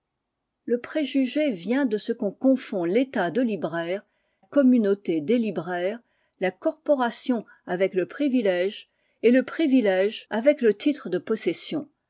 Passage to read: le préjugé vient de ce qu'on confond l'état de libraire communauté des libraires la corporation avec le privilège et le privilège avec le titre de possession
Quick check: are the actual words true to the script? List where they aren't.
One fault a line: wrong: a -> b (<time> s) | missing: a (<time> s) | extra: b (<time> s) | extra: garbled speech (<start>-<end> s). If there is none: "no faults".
no faults